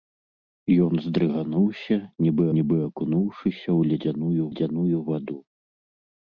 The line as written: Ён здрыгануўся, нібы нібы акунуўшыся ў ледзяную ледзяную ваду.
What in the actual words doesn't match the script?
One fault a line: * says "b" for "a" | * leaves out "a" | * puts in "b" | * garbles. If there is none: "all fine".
all fine